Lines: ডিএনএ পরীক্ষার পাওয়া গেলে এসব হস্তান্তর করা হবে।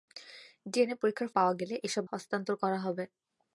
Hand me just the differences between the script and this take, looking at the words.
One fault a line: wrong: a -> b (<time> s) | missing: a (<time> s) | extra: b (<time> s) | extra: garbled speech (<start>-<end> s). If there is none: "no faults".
no faults